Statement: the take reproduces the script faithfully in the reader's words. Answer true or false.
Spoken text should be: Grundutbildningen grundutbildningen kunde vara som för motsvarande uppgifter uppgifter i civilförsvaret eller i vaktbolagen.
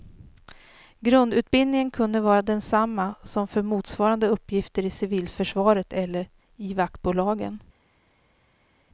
false